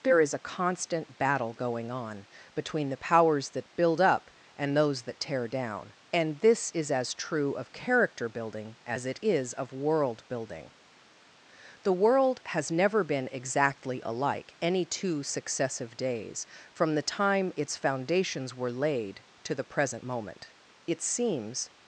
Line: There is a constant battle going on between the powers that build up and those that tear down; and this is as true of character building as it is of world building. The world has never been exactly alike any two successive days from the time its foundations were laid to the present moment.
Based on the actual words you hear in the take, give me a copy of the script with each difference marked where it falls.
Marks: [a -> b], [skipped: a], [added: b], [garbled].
There is a constant battle going on between the powers that build up and those that tear down; and this is as true of character building as it is of world building. The world has never been exactly alike any two successive days from the time its foundations were laid to the present moment. [added: It seems]